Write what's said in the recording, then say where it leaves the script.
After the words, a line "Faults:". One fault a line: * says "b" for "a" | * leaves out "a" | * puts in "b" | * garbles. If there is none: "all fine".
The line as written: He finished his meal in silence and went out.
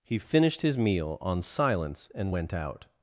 He finished his meal on silence and went out.
Faults:
* says "on" for "in"